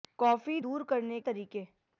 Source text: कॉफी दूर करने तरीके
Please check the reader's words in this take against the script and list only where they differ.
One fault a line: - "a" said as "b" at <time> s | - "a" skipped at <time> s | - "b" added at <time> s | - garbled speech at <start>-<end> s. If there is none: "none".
none